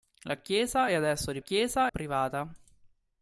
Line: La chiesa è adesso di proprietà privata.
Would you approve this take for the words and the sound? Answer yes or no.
no